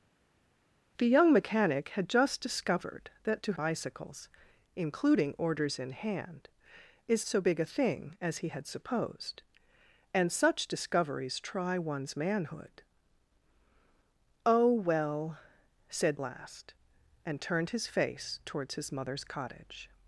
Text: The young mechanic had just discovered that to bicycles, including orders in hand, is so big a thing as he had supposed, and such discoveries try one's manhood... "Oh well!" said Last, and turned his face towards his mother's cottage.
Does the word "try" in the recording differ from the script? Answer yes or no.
no